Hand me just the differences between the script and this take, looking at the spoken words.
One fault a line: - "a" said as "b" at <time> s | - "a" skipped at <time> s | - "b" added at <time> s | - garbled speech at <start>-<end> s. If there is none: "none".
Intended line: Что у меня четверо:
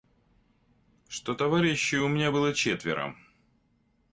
- "товарищей" added at 1.3 s
- "было" added at 2.3 s